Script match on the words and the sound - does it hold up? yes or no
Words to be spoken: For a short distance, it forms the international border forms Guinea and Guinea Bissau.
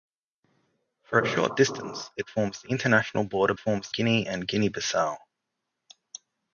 yes